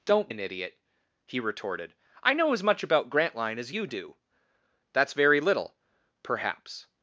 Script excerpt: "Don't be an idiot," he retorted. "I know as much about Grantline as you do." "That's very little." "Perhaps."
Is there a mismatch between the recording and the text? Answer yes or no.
yes